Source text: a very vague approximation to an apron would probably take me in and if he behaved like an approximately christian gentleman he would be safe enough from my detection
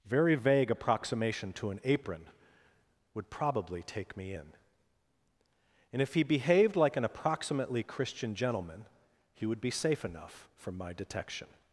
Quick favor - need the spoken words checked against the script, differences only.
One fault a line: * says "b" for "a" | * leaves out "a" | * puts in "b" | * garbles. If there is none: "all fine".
* leaves out "a"